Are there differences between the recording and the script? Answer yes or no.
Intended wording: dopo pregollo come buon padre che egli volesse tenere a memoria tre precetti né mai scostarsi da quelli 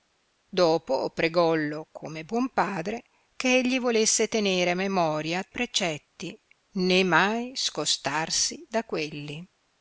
yes